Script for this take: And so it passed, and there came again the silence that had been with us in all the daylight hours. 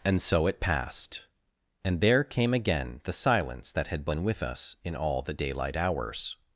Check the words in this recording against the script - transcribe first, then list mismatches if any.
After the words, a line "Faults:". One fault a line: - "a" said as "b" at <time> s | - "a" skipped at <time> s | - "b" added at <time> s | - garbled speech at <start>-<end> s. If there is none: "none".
And so it passed, and there came again the silence that had been with us in all the daylight hours.
Faults:
none